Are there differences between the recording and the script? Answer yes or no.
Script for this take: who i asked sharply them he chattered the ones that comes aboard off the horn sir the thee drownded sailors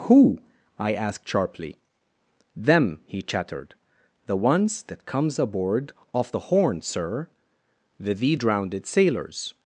no